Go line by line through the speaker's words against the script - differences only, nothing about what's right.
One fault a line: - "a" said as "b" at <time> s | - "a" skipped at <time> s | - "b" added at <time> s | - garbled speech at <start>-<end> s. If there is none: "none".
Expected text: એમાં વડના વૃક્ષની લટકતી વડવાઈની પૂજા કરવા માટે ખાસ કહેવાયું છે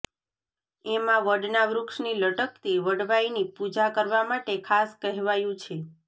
none